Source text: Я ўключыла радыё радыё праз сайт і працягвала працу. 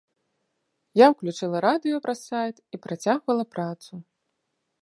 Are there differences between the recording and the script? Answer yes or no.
yes